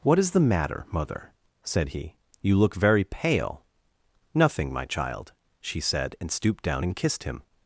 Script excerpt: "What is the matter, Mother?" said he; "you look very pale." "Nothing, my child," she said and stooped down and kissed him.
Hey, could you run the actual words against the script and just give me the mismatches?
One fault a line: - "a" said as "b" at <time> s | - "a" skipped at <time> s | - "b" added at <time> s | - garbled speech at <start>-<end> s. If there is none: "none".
none